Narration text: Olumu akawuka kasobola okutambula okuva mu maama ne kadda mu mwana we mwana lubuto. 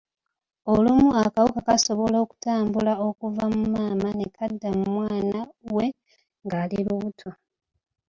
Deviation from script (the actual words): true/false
true